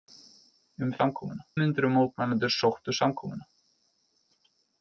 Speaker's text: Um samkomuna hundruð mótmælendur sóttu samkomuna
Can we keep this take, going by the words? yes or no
yes